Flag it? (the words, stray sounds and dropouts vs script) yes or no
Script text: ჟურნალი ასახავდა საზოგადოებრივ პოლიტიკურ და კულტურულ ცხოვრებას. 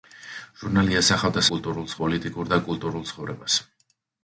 yes